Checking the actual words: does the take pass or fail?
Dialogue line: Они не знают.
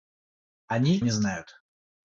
pass